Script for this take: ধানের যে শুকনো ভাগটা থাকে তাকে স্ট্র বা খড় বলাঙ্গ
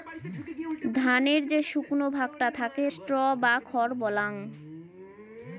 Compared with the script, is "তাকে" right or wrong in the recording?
wrong